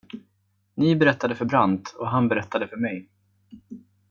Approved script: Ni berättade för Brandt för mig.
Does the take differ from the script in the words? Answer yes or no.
yes